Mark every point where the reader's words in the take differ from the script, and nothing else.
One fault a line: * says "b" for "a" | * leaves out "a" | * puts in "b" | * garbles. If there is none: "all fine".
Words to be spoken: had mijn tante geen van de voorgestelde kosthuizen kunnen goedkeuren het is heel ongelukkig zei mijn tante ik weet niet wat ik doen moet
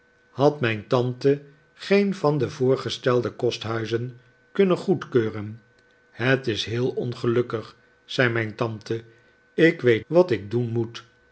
* leaves out "niet"